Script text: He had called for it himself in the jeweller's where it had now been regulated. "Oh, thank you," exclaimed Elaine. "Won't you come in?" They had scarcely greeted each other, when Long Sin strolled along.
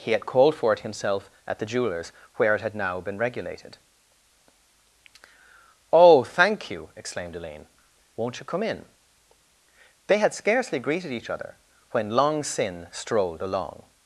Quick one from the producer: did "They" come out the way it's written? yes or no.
yes